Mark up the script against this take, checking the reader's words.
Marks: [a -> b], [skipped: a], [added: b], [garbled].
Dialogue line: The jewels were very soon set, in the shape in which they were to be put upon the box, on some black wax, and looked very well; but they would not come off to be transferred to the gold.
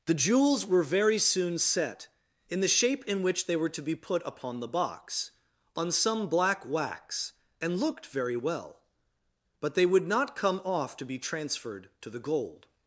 The jewels were very soon set, in the shape in which they were to be put upon the box, on some black wax, and looked very well; but they would not come off to be transferred to the gold.